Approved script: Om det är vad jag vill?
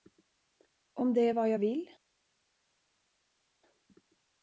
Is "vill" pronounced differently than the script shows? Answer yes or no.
no